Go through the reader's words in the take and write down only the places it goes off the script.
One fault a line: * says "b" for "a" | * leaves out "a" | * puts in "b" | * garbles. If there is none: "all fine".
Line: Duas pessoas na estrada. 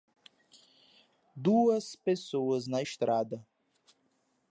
all fine